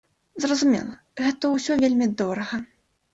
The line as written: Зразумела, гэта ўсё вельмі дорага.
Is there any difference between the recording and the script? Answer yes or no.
no